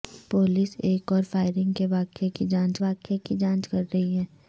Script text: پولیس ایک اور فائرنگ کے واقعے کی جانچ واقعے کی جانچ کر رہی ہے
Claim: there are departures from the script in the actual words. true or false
false